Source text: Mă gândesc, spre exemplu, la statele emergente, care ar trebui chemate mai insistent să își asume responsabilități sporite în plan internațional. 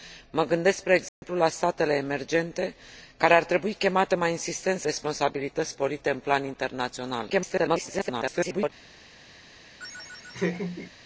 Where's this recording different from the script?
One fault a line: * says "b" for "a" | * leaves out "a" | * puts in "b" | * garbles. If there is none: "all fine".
* leaves out "își asume"
* garbles